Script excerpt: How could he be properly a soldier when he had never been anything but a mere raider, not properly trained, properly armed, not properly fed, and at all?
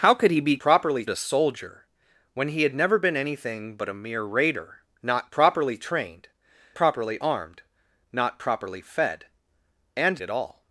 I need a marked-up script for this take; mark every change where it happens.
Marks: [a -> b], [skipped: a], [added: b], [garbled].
How could he be properly a soldier when he had never been anything but a mere raider, not properly trained, properly armed, not properly fed, and at all?